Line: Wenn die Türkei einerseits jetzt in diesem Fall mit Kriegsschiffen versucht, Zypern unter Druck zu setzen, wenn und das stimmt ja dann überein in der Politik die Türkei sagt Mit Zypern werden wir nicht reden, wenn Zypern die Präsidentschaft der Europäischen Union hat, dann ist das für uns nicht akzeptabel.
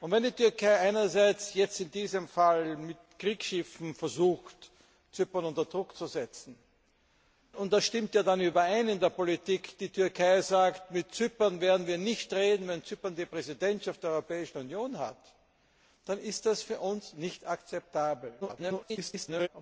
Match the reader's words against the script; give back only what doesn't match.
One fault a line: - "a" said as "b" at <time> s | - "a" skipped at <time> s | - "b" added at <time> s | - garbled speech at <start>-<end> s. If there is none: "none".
- "wenn" skipped at 6.6 s
- garbled speech at 18.4-19.5 s